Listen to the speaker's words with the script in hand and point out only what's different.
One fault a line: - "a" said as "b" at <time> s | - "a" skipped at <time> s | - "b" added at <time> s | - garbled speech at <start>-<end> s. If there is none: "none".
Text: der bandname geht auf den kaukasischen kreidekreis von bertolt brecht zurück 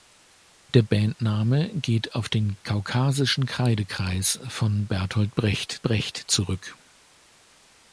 - "brecht" added at 5.8 s